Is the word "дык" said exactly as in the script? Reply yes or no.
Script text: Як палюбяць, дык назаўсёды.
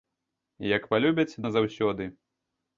no